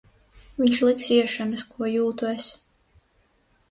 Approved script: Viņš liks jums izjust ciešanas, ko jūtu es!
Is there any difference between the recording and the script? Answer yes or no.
yes